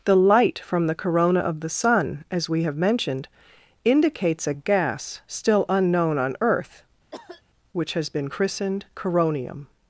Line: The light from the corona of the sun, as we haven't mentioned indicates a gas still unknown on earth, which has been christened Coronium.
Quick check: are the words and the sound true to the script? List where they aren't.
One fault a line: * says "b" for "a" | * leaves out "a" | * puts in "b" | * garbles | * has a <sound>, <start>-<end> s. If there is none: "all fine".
* says "have" for "haven't"
* has a cough, 7.1-7.4 s